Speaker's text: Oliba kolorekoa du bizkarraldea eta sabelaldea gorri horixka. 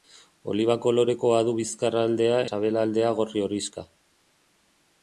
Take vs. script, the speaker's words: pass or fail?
fail